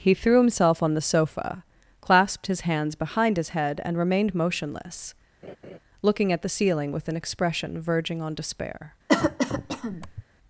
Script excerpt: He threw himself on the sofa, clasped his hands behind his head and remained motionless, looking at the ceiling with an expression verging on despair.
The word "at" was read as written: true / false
true